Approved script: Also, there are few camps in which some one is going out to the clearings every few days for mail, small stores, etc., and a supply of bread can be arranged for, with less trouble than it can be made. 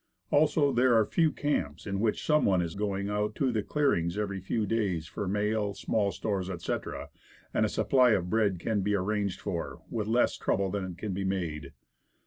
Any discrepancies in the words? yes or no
no